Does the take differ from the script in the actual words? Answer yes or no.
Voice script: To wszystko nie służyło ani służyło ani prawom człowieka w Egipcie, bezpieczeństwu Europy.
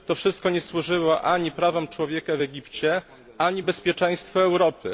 yes